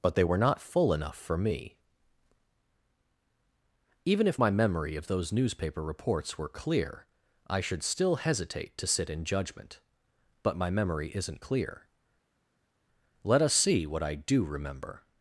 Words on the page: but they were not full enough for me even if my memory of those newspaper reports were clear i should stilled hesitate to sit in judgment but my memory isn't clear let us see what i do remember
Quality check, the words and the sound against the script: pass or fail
fail